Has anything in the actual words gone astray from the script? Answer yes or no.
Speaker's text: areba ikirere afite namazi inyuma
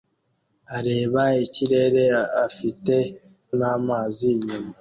no